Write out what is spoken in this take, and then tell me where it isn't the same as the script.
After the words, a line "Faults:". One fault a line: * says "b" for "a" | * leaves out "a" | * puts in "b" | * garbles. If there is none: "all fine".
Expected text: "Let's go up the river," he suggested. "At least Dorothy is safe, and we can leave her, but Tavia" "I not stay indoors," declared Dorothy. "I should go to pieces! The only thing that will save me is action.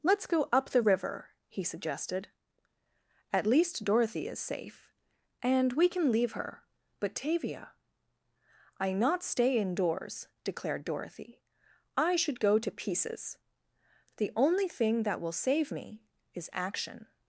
"Let's go up the river," he suggested. "At least Dorothy is safe, and we can leave her, but Tavia" "I not stay indoors," declared Dorothy. "I should go to pieces! The only thing that will save me is action.
Faults:
all fine